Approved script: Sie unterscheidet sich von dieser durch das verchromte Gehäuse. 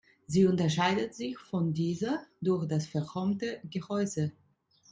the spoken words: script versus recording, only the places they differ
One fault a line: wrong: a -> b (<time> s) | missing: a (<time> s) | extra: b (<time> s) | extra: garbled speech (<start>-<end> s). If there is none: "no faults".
no faults